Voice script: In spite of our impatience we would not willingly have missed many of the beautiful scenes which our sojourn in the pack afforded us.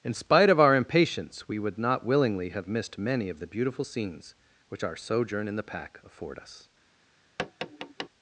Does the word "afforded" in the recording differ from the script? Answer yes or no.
yes